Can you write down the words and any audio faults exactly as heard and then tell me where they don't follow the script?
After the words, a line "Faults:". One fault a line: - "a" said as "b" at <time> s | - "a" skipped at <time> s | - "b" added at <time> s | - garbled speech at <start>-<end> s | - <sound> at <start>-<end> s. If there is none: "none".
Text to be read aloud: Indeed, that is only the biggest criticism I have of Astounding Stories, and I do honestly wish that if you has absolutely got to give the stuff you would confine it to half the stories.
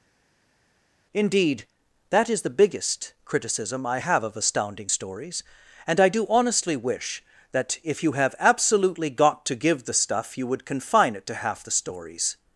Indeed, that is the biggest criticism I have of Astounding Stories, and I do honestly wish that if you have absolutely got to give the stuff you would confine it to half the stories.
Faults:
- "only" skipped at 2.4 s
- "has" said as "have" at 8.1 s